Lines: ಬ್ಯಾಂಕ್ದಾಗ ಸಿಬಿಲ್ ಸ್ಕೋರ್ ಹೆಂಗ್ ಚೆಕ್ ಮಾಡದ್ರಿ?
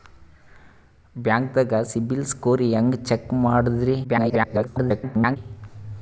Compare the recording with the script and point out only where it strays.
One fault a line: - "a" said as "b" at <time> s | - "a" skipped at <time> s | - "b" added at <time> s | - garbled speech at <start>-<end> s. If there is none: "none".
- garbled speech at 4.0-5.4 s